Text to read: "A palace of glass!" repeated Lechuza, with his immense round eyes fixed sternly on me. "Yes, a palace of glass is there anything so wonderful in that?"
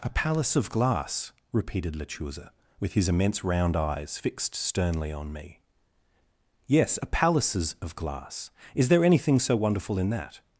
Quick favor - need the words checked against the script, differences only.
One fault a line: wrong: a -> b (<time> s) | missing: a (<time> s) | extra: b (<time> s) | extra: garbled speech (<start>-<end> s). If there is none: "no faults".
wrong: palace -> palaces (7.1 s)